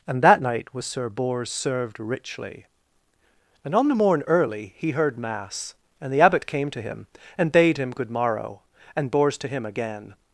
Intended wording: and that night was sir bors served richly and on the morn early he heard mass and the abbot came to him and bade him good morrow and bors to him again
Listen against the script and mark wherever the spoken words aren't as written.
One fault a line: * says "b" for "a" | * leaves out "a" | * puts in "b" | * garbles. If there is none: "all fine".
all fine